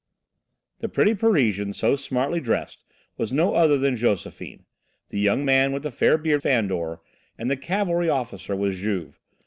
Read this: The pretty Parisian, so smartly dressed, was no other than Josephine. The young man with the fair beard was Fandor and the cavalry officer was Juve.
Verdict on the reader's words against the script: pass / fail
fail